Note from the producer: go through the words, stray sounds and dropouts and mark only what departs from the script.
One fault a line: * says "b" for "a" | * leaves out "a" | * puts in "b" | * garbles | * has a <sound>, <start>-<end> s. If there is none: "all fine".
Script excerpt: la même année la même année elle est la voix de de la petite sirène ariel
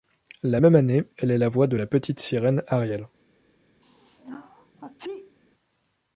* leaves out "la même année"
* leaves out "de"
* has a sneeze, 3.8-5.4 s